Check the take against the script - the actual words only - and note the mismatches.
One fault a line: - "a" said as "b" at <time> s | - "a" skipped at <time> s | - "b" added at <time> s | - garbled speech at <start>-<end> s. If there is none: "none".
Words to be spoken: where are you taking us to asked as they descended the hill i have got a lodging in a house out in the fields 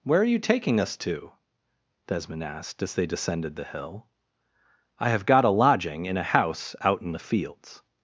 - "desmond" added at 2.1 s